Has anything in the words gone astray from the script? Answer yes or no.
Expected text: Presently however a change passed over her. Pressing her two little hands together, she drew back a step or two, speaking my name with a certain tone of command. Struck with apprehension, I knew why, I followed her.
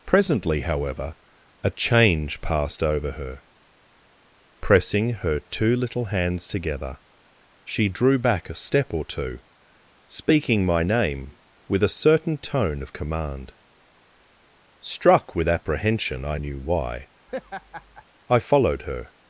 no